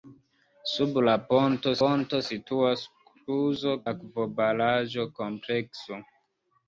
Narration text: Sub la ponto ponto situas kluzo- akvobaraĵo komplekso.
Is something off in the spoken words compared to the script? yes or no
no